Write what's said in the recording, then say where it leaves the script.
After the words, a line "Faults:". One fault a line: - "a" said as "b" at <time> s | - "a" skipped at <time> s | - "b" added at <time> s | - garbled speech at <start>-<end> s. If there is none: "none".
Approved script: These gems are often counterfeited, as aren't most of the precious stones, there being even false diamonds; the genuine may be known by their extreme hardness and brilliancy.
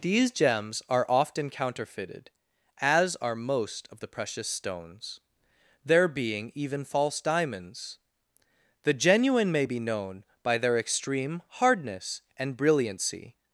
These gems are often counterfeited, as are most of the precious stones, there being even false diamonds; the genuine may be known by their extreme hardness and brilliancy.
Faults:
- "aren't" said as "are" at 3.2 s